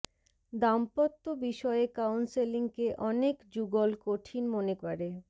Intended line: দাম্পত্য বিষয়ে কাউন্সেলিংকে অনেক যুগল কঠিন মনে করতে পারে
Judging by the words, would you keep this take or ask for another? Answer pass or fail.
fail